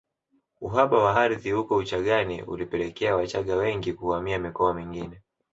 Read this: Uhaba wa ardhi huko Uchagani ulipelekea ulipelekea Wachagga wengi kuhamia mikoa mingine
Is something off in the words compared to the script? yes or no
yes